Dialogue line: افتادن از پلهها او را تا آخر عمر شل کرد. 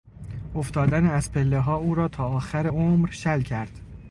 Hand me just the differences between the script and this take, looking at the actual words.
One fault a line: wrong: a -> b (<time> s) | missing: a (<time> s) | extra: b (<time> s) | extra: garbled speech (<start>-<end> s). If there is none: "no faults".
no faults